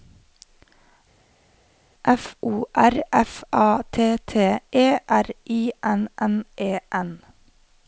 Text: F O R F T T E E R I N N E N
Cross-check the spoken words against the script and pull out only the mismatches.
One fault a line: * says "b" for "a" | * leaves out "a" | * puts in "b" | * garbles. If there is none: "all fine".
* puts in "A"
* leaves out "E"